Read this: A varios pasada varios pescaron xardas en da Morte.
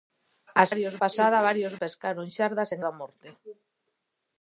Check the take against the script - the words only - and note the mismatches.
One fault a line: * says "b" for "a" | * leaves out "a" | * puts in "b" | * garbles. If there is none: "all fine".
all fine